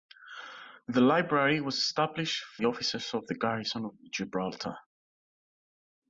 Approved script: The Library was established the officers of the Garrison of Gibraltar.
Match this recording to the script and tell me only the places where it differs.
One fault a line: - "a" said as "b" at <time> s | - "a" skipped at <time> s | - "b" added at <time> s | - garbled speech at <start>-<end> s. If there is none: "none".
none